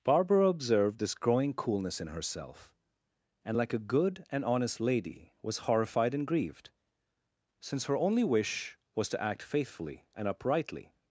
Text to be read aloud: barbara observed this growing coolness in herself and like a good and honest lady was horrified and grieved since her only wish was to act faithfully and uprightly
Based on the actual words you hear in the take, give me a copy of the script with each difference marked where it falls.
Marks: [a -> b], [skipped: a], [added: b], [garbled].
barbara observed this growing coolness in herself and like a good and honest lady was horrified and grieved since her only wish was to act faithfully and uprightly